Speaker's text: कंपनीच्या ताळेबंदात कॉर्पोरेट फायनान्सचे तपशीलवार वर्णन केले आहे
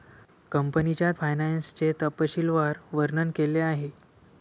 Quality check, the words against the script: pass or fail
fail